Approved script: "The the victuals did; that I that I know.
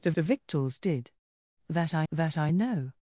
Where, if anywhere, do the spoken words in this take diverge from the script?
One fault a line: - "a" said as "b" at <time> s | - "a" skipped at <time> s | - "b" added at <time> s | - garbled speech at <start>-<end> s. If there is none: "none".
none